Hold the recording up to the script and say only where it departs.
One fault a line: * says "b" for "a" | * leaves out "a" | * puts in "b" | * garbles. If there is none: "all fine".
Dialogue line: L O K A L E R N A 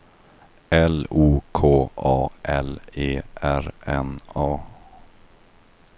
all fine